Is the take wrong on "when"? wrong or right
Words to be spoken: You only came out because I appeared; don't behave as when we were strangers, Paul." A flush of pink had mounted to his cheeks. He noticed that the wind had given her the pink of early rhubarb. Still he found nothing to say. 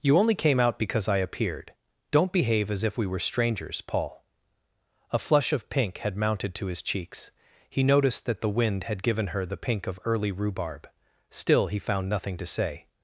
wrong